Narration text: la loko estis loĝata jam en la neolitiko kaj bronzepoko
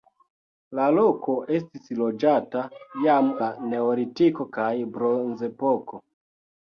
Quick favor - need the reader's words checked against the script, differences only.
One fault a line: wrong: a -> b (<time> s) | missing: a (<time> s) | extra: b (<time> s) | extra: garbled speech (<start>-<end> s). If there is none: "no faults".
missing: en (3.3 s)